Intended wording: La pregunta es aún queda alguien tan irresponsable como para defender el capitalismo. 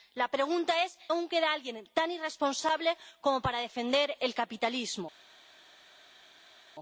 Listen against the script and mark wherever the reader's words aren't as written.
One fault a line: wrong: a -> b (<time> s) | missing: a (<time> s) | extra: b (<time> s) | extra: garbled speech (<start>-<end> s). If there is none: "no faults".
no faults